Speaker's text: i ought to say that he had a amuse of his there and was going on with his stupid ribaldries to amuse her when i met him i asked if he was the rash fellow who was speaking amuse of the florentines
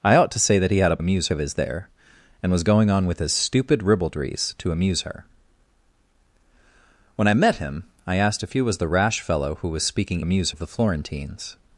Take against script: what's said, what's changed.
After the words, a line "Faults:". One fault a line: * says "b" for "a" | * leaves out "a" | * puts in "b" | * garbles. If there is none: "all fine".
i ought to say that he had a amuse of his there and was going on with his stupid ribaldries to amuse her when i met him i asked if he was the rash fellow who was speaking amuse of the florentines
Faults:
all fine